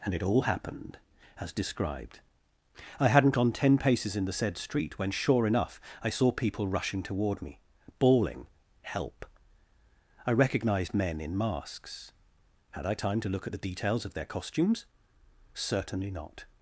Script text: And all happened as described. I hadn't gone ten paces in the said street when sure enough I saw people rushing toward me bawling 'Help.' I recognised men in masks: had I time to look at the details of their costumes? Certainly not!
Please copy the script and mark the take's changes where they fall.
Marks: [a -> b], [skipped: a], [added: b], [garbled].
And [added: it] all happened as described. I hadn't gone ten paces in the said street when sure enough I saw people rushing toward me bawling 'Help.' I recognised men in masks: had I time to look at the details of their costumes? Certainly not!